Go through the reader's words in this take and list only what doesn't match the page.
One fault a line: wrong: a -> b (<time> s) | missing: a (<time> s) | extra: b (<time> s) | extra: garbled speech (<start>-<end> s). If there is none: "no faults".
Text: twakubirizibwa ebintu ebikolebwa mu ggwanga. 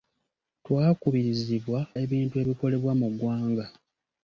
no faults